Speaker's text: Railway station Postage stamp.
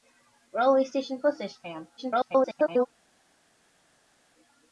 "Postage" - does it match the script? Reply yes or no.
yes